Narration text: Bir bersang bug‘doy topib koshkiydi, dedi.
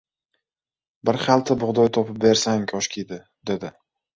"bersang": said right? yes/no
no